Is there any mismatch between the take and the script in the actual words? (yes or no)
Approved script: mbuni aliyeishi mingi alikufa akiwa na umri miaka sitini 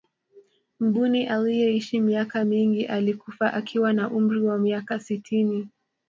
yes